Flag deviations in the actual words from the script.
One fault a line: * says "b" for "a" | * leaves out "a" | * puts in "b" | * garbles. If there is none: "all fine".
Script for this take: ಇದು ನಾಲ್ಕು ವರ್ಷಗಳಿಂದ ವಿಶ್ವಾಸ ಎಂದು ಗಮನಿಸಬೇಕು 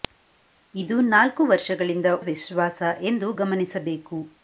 all fine